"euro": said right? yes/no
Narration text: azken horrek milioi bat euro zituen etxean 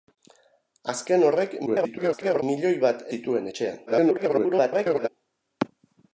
no